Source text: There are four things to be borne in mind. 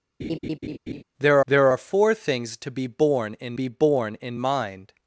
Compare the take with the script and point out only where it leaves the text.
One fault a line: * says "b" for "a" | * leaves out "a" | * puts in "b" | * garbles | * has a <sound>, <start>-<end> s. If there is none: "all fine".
* has a laugh, 0.2-1.0 s
* puts in "there"
* puts in "be borne in"